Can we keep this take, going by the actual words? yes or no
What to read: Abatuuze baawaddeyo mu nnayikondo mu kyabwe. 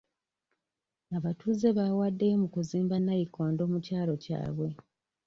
no